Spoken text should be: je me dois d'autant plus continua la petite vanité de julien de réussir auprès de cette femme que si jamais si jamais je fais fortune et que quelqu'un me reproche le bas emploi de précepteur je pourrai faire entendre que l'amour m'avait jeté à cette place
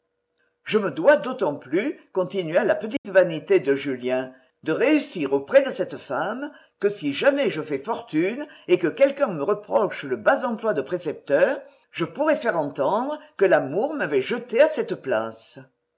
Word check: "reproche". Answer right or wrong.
right